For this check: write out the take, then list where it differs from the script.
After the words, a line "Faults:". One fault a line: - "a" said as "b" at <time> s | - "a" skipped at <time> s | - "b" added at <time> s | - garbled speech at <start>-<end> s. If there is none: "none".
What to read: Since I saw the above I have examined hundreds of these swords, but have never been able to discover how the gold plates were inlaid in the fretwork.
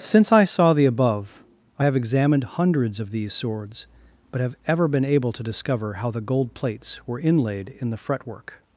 Since I saw the above I have examined hundreds of these swords, but have ever been able to discover how the gold plates were inlaid in the fretwork.
Faults:
- "never" said as "ever" at 4.7 s